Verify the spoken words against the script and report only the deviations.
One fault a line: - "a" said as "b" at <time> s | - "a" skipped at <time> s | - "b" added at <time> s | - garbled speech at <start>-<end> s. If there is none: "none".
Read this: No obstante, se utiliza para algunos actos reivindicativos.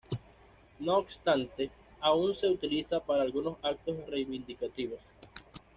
- "aún" added at 2.0 s